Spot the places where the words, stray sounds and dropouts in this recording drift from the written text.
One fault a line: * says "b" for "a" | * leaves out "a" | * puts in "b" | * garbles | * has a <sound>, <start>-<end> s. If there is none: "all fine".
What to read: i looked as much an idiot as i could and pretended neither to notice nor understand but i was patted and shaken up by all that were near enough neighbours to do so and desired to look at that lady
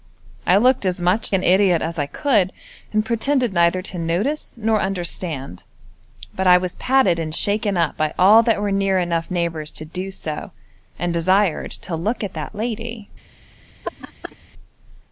* has a laugh, 13.8-14.4 s